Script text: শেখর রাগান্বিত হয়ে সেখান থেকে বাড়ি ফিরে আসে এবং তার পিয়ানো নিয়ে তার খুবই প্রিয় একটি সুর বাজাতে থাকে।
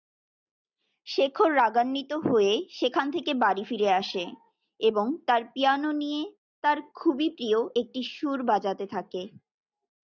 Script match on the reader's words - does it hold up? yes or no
yes